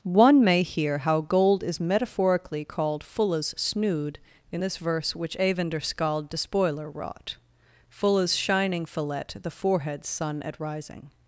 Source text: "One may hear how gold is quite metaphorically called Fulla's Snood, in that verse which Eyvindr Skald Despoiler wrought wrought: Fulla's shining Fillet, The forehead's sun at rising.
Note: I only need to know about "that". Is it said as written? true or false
false